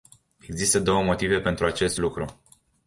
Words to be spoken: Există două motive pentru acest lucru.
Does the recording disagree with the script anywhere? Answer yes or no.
no